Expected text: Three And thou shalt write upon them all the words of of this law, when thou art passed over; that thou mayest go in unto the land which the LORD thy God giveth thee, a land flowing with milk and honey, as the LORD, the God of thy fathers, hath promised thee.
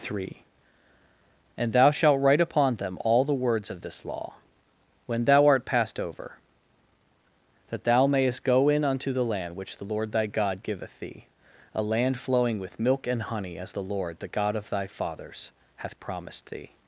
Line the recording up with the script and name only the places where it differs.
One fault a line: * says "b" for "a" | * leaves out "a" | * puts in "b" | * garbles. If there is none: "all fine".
* leaves out "of"